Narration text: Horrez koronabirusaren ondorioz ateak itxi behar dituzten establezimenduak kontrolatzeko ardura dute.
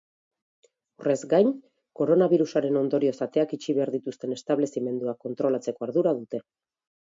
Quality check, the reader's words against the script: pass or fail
fail